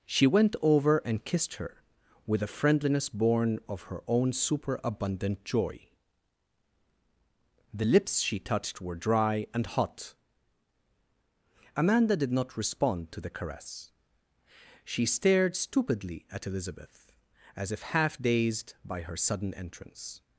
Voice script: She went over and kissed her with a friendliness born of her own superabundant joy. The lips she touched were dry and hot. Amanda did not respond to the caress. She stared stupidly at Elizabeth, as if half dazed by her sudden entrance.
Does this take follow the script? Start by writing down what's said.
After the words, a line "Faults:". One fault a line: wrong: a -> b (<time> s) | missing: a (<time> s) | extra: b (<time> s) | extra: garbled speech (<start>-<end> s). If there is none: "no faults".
She went over and kissed her with a friendliness born of her own superabundant joy. The lips she touched were dry and hot. Amanda did not respond to the caress. She stared stupidly at Elizabeth, as if half dazed by her sudden entrance.
Faults:
no faults